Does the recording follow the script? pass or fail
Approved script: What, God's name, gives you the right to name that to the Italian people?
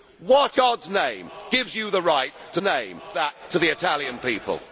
pass